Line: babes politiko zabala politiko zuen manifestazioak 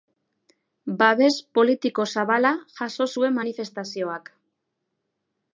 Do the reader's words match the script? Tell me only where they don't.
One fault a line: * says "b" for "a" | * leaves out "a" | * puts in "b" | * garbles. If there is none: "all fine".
* says "jaso" for "politiko"